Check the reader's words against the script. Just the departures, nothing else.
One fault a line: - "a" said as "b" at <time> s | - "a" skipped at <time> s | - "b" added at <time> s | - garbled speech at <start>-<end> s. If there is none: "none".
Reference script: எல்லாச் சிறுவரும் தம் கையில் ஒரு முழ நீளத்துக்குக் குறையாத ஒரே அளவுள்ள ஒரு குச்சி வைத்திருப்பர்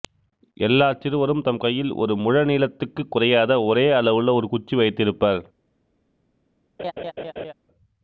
none